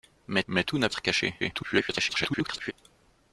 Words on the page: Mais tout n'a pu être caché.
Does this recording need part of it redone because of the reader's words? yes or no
yes